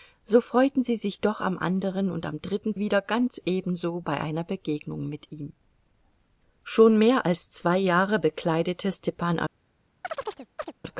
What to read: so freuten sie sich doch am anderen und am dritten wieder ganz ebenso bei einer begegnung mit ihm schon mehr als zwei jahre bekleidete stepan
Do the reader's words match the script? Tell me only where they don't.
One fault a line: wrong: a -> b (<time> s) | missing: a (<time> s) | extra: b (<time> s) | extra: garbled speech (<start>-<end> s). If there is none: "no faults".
no faults